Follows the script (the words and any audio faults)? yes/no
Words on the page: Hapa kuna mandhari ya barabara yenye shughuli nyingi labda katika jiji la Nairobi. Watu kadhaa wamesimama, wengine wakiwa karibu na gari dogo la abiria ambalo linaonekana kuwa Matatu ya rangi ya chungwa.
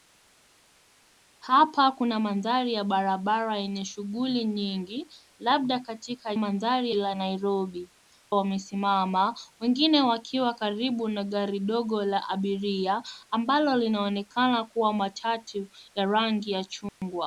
no